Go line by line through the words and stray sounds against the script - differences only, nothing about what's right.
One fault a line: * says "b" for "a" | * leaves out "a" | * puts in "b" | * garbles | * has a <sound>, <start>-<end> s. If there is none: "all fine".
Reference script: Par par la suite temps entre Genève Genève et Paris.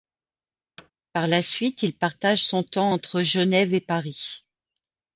* has a thud, 0.8-0.9 s
* leaves out "par"
* puts in "il partage son"
* leaves out "Genève"